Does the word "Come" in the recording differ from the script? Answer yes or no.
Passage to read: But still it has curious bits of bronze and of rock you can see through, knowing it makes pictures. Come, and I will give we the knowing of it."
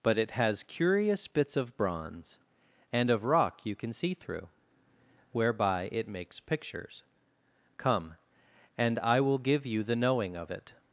no